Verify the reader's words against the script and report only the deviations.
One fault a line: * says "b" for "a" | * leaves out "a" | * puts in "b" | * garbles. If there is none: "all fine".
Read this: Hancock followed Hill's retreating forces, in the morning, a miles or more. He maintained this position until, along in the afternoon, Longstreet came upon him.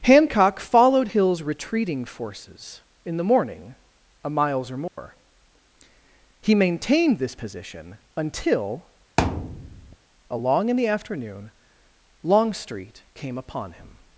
all fine